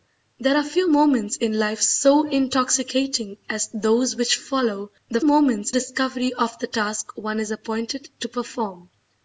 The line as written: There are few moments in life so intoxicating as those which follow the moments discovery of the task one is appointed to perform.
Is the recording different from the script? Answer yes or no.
no